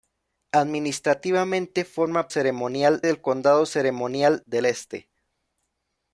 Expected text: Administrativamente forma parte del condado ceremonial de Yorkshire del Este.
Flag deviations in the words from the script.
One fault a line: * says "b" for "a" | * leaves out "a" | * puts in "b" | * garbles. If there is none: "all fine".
* says "ceremonial" for "parte"
* leaves out "de Yorkshire"